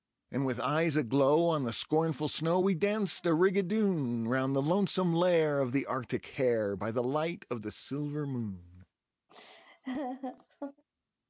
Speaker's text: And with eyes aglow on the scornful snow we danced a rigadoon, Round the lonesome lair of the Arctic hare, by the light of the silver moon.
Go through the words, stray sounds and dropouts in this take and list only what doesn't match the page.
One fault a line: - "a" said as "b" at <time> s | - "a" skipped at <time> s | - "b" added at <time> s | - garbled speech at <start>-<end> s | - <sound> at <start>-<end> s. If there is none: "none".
- laugh at 9.3-10.8 s